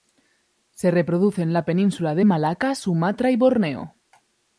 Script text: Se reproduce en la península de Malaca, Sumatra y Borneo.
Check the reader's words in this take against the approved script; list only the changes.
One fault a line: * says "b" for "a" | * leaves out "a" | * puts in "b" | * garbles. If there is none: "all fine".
all fine